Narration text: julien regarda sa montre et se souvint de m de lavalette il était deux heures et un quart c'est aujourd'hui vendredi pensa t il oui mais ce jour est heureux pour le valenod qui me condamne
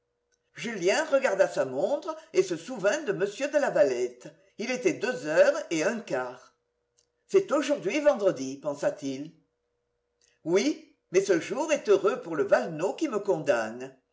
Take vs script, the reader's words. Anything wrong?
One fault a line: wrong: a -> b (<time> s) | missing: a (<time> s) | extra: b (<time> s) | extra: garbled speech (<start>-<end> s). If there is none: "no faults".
no faults